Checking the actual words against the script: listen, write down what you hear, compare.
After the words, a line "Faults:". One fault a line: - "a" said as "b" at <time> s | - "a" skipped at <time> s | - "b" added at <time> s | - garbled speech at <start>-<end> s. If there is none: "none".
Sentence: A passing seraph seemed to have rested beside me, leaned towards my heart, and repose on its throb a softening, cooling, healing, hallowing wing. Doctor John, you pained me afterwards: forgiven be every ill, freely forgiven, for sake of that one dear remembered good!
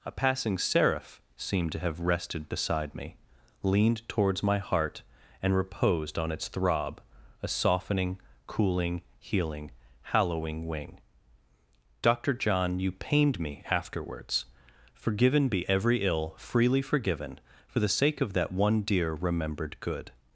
A passing seraph seemed to have rested beside me, leaned towards my heart, and reposed on its throb a softening, cooling, healing, hallowing wing. Doctor John, you pained me afterwards: forgiven be every ill, freely forgiven, for the sake of that one dear remembered good!
Faults:
- "repose" said as "reposed" at 5.5 s
- "the" added at 17.8 s